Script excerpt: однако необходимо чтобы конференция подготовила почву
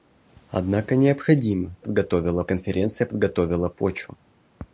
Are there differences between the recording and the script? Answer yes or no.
yes